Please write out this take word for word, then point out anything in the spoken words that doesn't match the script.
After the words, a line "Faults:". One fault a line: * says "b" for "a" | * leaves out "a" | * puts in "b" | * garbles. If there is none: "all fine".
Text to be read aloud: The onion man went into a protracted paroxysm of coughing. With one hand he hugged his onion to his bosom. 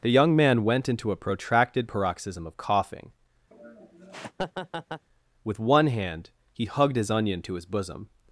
The young man went into a protracted paroxysm of coughing. With one hand he hugged his onion to his bosom.
Faults:
* says "young" for "onion"